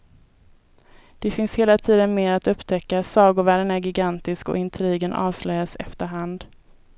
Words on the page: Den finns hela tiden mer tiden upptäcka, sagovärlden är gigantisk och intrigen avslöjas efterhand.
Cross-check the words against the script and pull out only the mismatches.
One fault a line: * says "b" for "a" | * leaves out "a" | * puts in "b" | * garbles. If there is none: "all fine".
* says "Det" for "Den"
* says "att" for "tiden"